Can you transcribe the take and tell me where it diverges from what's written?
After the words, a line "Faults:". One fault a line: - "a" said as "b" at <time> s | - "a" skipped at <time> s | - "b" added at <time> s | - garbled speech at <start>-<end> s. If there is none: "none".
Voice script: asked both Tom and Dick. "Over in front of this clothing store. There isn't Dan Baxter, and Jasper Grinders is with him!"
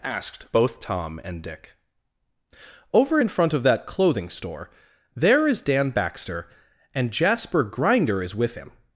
asked both Tom and Dick. "Over in front of that clothing store. There is Dan Baxter, and Jasper Grinder is with him!"
Faults:
- "this" said as "that" at 3.6 s
- "isn't" said as "is" at 5.5 s
- "Grinders" said as "Grinder" at 7.6 s